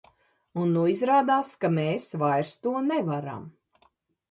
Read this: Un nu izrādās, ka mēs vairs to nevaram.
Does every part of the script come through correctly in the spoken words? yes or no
yes